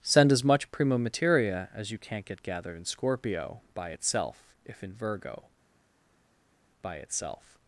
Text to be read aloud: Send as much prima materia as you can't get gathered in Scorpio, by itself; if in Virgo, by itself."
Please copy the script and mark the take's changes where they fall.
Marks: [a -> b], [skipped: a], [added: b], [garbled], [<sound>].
Send as much prima materia as you can't get gathered in Scorpio, by itself; if in Virgo, by itself."